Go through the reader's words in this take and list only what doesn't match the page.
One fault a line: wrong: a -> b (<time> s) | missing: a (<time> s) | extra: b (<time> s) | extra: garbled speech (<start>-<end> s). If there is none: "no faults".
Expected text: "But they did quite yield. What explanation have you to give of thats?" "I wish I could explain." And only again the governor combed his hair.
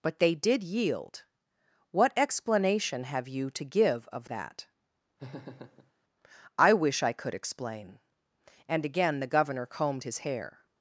missing: quite (0.6 s)
wrong: thats -> that (4.3 s)
missing: only (8.8 s)